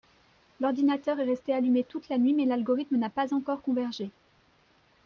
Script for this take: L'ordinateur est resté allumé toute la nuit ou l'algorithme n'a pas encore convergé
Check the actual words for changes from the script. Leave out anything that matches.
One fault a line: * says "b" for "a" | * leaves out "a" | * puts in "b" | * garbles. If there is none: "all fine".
* says "mais" for "ou"